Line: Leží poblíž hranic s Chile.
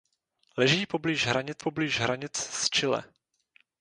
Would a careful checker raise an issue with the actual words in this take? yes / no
yes